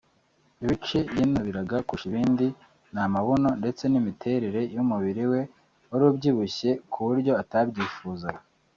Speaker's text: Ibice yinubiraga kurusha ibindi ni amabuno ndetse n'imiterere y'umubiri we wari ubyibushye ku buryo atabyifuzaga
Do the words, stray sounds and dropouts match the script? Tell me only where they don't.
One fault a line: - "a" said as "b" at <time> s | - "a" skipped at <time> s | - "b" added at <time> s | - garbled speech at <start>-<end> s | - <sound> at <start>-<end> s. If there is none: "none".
none